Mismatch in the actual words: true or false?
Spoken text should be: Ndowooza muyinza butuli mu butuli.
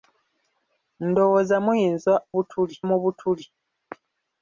false